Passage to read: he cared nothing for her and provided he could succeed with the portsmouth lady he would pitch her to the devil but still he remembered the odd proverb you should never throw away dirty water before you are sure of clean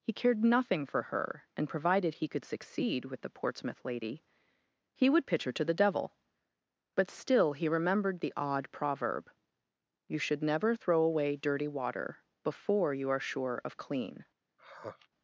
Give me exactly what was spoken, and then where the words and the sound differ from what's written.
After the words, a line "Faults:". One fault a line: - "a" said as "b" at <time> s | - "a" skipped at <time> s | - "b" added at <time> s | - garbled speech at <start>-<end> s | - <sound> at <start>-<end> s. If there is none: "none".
he cared nothing for her and provided he could succeed with the portsmouth lady he would pitch her to the devil but still he remembered the odd proverb you should never throw away dirty water before you are sure of clean
Faults:
- sigh at 14.6-15.1 s